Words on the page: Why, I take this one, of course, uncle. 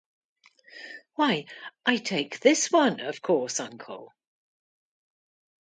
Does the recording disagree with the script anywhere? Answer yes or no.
no